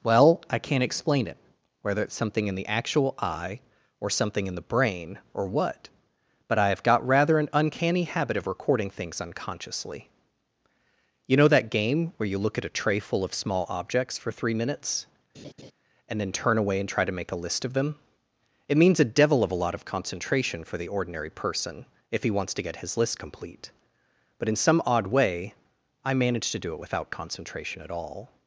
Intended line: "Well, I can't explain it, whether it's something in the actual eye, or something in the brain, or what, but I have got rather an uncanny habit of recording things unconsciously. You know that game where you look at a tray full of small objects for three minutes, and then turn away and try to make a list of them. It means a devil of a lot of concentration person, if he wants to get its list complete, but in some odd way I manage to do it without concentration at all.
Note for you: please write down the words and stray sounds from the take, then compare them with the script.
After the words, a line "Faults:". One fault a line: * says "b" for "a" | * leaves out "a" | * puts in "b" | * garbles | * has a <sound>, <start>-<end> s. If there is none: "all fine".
"Well, I can't explain it, whether it's something in the actual eye, or something in the brain, or what, but I have got rather an uncanny habit of recording things unconsciously. You know that game where you look at a tray full of small objects for three minutes, and then turn away and try to make a list of them. It means a devil of a lot of concentration for the ordinary person, if he wants to get his list complete, but in some odd way I manage to do it without concentration at all.
Faults:
* has a laugh, 15.3-15.7 s
* puts in "for the ordinary"
* says "his" for "its"